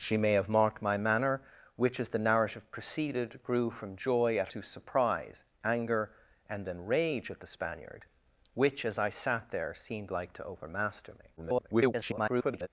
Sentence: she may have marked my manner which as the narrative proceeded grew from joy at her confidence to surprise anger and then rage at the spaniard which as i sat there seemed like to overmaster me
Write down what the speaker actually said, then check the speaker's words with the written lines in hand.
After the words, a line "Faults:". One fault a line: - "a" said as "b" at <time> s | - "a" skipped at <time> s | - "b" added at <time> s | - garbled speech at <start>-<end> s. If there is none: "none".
she may have marked my manner which as the narrative proceeded grew from joy at to surprise anger and then rage at the spaniard which as i sat there seemed like to overmaster me [garbled]
Faults:
- "her confidence" skipped at 4.5 s
- garbled speech at 11.4-12.7 s